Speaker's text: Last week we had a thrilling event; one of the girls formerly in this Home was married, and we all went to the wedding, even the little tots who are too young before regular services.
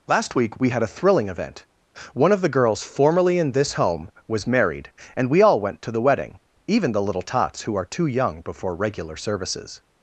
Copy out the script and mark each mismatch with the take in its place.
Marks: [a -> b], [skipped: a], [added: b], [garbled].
Last week we had a thrilling event; one of the girls formerly in this Home was married, and we all went to the wedding, even the little tots who are too young before regular services.